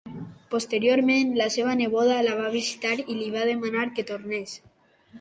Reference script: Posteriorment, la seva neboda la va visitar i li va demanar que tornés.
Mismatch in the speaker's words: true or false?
false